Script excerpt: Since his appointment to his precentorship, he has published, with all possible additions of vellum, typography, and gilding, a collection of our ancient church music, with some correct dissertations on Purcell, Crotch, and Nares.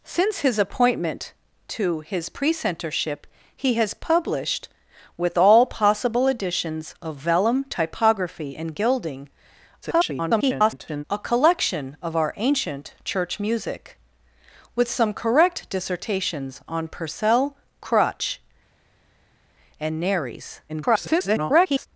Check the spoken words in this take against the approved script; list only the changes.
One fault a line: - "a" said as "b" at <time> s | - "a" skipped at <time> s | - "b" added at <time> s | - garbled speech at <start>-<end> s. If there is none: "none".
- garbled speech at 9.8-11.0 s
- garbled speech at 20.7-21.9 s